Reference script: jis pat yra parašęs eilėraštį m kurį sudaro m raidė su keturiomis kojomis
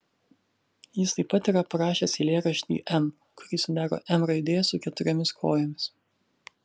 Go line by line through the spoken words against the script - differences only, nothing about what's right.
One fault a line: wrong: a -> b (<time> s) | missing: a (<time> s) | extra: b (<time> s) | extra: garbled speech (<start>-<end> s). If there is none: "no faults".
extra: taip (1.2 s)